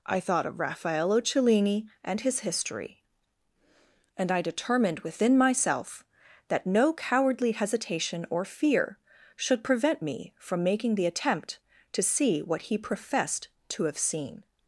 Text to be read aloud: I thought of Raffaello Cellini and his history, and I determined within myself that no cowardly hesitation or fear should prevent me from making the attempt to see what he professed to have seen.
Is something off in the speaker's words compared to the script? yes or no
no